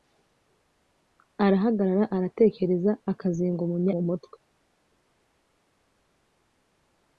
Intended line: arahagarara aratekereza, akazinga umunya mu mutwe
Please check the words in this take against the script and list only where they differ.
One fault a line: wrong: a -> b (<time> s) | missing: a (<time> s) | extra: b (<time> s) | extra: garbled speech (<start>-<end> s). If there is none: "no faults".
no faults